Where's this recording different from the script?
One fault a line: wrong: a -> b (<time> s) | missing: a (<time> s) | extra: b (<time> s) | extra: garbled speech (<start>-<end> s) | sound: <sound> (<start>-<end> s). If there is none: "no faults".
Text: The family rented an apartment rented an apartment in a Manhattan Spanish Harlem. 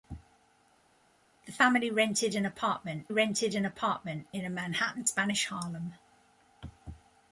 no faults